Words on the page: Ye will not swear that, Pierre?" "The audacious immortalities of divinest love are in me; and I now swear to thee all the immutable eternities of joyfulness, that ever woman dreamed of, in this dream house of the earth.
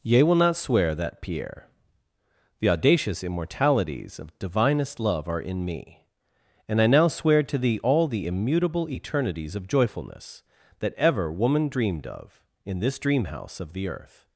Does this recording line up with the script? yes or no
yes